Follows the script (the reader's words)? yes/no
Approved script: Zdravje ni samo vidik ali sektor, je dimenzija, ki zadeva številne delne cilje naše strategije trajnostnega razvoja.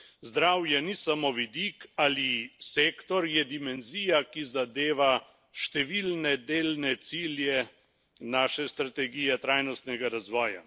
yes